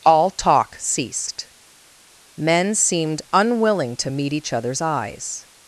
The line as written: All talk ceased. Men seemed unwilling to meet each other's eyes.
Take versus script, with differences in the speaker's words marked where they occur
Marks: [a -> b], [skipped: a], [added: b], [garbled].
All talk ceased. Men seemed unwilling to meet each other's eyes.